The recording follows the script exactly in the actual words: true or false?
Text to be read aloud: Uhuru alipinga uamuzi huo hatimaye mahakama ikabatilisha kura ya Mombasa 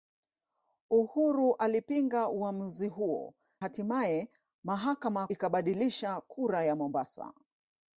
true